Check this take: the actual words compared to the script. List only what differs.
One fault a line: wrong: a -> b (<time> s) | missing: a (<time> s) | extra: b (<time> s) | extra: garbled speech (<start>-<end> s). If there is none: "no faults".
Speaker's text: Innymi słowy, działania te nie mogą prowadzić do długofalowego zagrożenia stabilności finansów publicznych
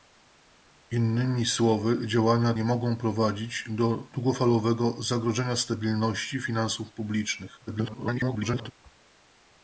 missing: te (2.5 s)
extra: garbled speech (7.7-8.7 s)